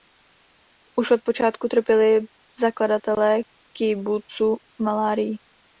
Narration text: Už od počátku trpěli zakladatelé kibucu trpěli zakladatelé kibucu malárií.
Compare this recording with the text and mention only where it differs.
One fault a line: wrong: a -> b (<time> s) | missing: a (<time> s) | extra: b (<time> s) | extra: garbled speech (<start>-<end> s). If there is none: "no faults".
missing: trpěli zakladatelé kibucu (4.6 s)